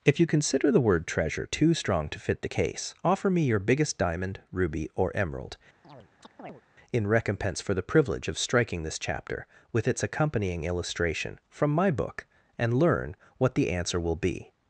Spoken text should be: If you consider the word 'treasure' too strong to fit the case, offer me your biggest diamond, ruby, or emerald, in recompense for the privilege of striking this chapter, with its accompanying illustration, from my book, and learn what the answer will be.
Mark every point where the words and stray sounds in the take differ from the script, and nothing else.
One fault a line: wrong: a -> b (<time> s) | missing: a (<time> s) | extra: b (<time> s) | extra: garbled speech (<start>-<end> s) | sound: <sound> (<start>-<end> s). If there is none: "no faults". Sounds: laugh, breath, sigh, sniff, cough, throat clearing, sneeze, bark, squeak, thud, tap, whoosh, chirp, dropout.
sound: chirp (5.8-6.6 s)